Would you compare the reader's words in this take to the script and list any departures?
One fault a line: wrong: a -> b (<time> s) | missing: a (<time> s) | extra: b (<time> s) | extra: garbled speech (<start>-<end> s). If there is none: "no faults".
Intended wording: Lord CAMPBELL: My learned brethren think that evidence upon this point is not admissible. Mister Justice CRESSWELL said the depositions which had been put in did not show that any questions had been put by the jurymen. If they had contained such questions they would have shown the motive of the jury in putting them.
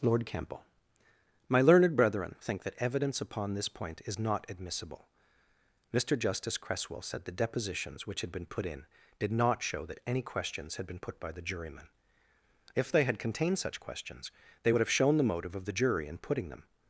no faults